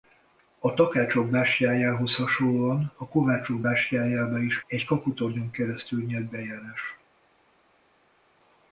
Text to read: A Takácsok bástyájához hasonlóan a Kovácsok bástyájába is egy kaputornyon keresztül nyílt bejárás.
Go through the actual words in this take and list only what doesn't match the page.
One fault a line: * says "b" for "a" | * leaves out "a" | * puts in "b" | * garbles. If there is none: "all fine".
all fine